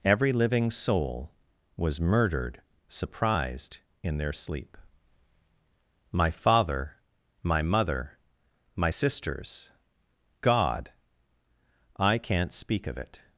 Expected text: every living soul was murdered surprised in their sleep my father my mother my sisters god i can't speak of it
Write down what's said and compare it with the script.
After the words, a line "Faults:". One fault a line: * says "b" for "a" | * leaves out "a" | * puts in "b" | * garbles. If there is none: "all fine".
every living soul was murdered surprised in their sleep my father my mother my sisters god i can't speak of it
Faults:
all fine